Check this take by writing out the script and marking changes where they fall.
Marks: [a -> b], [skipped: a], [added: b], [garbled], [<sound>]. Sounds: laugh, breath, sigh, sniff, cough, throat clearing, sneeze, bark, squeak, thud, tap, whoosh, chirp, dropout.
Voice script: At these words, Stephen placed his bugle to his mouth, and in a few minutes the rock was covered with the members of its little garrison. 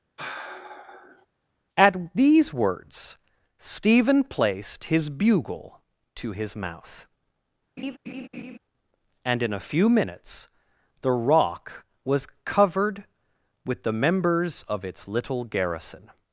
[sigh] At these words, Stephen placed his bugle to his mouth, [laugh] and in a few minutes the rock was covered with the members of its little garrison.